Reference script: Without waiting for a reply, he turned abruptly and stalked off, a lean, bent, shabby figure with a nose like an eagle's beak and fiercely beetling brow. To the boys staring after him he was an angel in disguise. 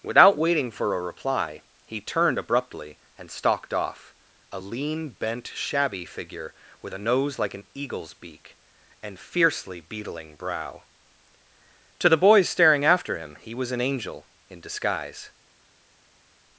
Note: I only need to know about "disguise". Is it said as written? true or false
true